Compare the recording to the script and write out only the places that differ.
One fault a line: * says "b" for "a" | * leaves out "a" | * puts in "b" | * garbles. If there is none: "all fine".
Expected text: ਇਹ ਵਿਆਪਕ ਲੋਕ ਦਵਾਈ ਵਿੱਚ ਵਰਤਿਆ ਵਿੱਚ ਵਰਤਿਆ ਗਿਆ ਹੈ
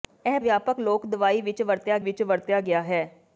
all fine